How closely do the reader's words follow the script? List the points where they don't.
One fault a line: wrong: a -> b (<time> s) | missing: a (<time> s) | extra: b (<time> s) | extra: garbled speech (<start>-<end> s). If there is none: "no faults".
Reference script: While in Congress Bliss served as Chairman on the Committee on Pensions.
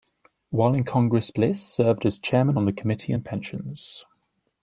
no faults